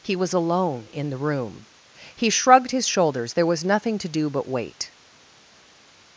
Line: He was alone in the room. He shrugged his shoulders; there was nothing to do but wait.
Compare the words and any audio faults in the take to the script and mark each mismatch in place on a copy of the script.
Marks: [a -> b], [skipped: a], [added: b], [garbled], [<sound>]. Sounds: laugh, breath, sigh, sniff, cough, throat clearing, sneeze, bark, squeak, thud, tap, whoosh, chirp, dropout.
He was alone in the room. He shrugged his shoulders; there was nothing to do but wait.